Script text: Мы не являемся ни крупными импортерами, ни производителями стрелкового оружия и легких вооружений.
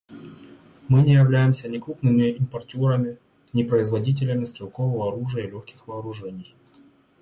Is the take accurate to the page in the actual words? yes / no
yes